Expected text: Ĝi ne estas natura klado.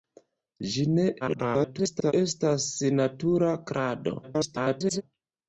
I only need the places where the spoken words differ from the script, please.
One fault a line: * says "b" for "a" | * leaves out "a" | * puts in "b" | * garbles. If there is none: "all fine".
* garbles
* garbles